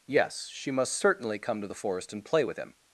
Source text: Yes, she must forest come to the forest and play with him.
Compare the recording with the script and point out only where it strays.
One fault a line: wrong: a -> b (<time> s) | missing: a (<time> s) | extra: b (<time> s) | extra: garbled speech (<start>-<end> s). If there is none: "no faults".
wrong: forest -> certainly (0.9 s)